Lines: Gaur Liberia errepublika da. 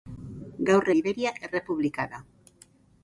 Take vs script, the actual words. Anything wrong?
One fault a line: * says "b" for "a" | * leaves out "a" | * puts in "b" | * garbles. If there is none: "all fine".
all fine